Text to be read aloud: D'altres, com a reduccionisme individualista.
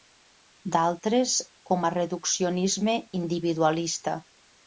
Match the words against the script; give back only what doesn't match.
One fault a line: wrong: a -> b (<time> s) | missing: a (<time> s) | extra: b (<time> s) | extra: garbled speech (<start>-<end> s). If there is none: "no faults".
no faults